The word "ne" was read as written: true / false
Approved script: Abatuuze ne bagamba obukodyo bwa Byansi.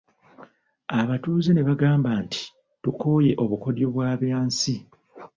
true